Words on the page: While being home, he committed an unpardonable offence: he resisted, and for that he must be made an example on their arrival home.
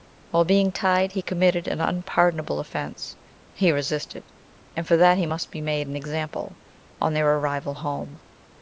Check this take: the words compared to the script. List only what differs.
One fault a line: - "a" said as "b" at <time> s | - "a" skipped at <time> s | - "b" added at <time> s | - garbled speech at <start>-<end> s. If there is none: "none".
- "home" said as "tied" at 0.7 s